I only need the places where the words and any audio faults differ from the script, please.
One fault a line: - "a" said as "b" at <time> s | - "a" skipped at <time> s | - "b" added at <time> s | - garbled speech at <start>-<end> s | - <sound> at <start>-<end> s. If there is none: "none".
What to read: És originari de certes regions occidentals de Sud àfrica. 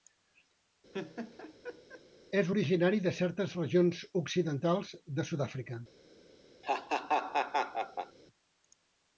- laugh at 0.9-2.0 s
- laugh at 6.6-8.2 s